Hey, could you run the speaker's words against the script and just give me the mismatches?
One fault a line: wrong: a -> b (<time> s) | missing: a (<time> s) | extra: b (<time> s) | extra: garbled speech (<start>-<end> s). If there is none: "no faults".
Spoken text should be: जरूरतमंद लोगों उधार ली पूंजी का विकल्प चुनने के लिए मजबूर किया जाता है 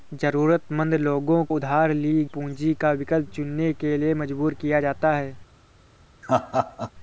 no faults